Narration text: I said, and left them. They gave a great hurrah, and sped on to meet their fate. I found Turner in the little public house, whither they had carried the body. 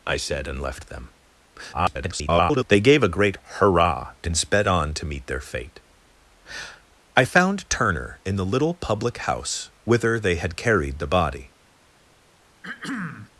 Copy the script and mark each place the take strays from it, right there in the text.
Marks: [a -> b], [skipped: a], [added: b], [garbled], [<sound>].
I said, and left them. [garbled] They gave a great hurrah, and sped on to meet their fate. I found Turner in the little public house, whither they had carried the body. [throat clearing]